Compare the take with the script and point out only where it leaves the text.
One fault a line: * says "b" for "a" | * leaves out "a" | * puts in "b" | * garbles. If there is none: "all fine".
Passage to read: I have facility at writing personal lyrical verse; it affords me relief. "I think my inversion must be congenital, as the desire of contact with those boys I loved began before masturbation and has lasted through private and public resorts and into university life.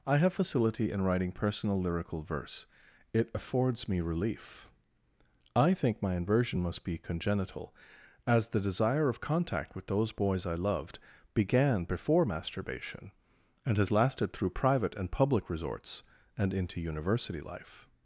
* says "in" for "at"